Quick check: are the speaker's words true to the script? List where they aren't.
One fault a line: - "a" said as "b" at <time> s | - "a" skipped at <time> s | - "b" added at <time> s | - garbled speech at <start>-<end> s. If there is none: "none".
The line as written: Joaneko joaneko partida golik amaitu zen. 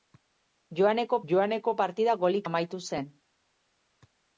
none